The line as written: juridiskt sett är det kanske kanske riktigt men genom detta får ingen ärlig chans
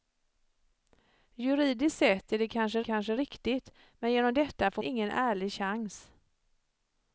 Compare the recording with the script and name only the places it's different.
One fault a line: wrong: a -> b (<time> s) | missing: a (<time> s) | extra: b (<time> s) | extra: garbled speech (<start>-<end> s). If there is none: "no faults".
no faults